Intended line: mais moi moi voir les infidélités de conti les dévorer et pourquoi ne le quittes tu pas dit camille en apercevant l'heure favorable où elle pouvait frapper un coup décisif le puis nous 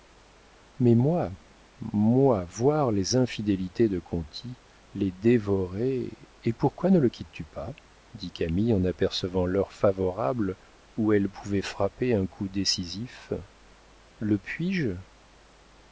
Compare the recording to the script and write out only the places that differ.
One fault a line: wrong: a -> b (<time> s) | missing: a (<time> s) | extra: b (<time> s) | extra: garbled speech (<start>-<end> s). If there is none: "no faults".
wrong: nous -> je (14.7 s)